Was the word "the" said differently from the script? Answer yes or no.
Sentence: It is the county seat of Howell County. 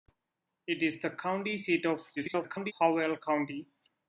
no